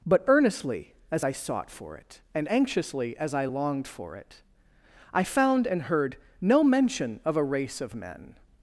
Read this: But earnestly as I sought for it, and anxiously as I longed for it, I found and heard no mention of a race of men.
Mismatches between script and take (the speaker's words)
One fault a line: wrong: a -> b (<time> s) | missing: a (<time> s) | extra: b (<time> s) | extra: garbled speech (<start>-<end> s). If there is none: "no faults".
no faults